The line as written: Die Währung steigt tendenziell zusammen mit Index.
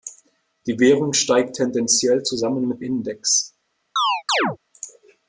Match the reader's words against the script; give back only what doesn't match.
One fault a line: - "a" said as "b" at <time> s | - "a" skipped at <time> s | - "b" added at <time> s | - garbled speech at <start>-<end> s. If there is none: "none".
none